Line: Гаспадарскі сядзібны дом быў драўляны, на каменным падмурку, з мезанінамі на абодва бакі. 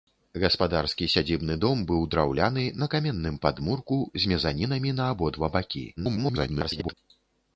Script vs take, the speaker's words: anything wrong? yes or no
yes